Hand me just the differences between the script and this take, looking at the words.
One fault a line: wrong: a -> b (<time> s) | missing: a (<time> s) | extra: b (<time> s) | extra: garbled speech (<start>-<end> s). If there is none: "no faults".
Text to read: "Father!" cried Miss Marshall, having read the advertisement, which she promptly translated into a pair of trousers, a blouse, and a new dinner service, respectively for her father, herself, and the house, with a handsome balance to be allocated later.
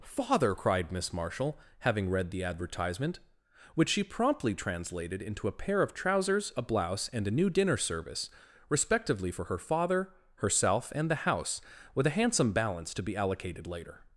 no faults